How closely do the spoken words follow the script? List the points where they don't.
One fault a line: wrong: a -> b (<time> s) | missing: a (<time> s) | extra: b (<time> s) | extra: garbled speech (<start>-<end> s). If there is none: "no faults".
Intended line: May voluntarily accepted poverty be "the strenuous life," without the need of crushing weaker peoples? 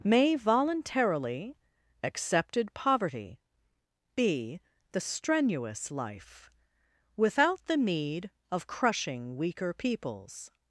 no faults